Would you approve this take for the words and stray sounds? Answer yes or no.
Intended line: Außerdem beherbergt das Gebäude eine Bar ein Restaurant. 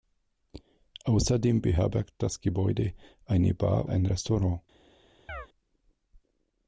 no